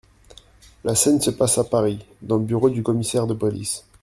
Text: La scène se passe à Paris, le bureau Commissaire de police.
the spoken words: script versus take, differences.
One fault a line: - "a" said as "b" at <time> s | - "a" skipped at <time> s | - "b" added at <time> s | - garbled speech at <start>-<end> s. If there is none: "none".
- "dans" added at 2.2 s
- "du" added at 2.7 s